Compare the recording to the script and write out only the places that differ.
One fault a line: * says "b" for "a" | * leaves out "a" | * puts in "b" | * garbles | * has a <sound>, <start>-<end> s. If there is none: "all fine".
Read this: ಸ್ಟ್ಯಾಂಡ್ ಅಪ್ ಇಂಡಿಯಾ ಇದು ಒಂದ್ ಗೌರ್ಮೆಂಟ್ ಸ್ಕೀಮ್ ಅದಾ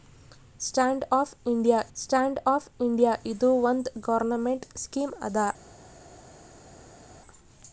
* puts in "ಸ್ಟ್ಯಾಂಡ್ ಅಪ್ ಇಂಡಿಯಾ"